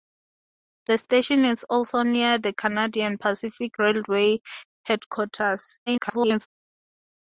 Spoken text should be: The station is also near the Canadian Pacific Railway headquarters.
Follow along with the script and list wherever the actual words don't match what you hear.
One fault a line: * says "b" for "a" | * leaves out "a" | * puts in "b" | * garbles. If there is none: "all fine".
* garbles